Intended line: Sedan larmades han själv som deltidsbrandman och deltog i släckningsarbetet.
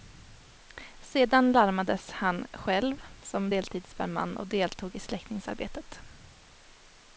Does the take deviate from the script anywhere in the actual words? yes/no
no